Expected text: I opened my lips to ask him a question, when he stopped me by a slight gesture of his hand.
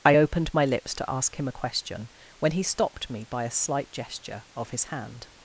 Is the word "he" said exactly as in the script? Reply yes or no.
yes